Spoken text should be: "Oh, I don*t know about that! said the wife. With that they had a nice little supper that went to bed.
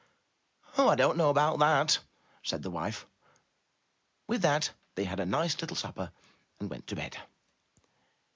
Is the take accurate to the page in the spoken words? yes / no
no